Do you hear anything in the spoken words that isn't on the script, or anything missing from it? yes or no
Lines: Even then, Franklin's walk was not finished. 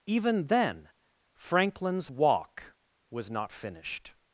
no